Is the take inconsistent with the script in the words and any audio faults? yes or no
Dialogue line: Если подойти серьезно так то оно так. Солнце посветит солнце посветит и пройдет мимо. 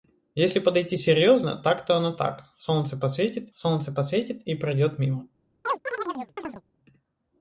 yes